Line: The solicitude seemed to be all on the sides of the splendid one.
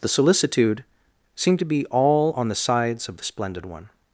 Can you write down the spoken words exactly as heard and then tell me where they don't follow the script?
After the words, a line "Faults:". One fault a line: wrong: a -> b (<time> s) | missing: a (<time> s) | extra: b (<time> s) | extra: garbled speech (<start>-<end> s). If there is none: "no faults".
The solicitude seemed to be all on the sides of the splendid one.
Faults:
no faults